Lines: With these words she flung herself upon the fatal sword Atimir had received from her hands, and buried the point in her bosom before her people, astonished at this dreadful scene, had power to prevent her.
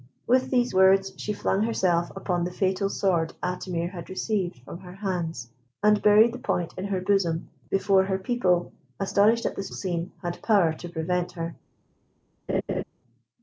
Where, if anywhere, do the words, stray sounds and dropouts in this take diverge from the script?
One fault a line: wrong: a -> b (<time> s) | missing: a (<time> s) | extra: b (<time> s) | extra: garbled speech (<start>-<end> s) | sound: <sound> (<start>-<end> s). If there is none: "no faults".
missing: dreadful (9.7 s)
sound: laugh (12.5-12.8 s)